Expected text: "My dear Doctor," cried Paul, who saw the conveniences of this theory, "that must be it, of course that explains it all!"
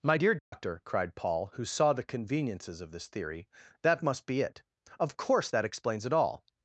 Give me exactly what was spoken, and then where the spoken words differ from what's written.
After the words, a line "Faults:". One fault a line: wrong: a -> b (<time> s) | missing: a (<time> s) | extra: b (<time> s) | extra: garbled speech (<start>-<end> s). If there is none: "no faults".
"My dear Doctor," cried Paul, who saw the conveniences of this theory, "that must be it, of course that explains it all!"
Faults:
no faults